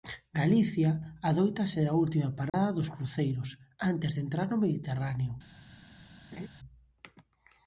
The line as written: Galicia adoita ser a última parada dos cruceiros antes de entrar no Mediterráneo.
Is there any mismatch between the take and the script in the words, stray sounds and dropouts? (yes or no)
yes